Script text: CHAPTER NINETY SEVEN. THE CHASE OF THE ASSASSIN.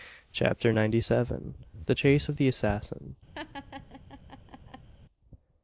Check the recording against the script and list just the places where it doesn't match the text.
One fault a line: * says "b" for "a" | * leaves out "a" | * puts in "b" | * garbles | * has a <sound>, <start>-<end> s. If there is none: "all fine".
* has a laugh, 3.3-4.9 s